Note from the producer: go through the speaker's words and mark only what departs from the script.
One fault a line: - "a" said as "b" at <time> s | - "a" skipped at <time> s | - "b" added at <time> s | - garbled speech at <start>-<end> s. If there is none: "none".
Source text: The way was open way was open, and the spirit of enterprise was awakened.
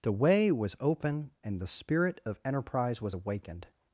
- "way was open" skipped at 1.3 s